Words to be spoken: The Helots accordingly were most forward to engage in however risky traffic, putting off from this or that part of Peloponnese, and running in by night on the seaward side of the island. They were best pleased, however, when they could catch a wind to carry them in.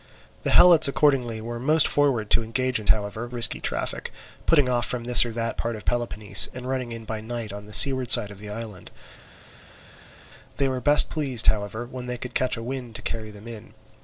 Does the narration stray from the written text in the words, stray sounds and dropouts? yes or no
no